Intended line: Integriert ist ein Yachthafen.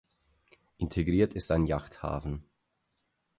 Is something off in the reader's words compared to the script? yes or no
no